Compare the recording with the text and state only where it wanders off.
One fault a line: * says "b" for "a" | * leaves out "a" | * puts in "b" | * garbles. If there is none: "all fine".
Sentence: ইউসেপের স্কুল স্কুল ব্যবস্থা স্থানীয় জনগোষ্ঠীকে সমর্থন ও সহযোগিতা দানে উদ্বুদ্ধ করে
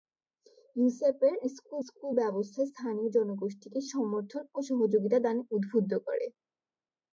all fine